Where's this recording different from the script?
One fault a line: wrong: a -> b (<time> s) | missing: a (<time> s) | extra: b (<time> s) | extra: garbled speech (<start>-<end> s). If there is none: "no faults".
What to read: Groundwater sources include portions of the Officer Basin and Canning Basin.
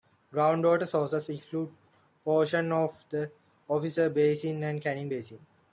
no faults